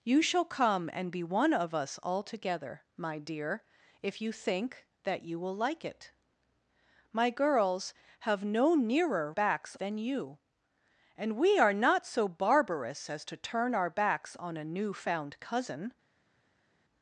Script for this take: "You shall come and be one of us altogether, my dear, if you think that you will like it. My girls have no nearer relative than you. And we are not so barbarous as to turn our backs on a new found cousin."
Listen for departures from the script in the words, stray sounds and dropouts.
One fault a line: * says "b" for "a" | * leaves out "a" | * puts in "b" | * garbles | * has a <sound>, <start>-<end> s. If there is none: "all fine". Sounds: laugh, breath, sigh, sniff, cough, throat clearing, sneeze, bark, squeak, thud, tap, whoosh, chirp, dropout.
* says "backs" for "relative"